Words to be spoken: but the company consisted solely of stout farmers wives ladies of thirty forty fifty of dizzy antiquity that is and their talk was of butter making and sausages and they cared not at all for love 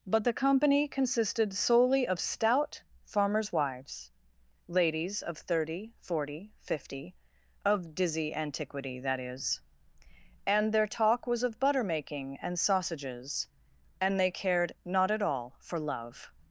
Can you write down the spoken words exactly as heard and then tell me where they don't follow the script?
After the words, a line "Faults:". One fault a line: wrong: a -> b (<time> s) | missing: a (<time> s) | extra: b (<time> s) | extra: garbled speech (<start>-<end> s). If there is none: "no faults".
but the company consisted solely of stout farmers wives ladies of thirty forty fifty of dizzy antiquity that is and their talk was of butter making and sausages and they cared not at all for love
Faults:
no faults